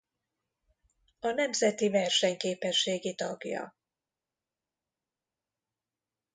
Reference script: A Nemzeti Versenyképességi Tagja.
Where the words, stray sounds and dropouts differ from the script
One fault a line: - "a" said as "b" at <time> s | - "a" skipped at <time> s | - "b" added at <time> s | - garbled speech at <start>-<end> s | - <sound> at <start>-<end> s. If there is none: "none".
none